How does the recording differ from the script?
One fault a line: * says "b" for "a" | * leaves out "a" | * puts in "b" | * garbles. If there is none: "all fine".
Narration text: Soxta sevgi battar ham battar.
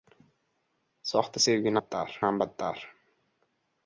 all fine